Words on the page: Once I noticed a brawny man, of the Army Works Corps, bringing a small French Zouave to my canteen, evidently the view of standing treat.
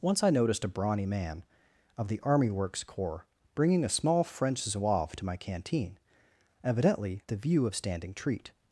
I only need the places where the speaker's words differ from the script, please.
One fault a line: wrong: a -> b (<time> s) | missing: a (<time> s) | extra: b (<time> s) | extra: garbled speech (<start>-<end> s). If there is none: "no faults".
no faults